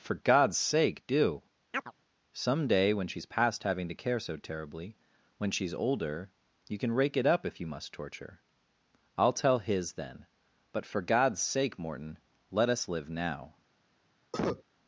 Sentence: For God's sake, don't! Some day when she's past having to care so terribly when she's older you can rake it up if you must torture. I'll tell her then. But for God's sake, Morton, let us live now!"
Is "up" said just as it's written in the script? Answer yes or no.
yes